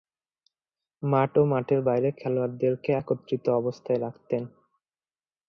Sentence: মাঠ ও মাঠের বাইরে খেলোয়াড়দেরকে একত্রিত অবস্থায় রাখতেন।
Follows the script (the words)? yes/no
yes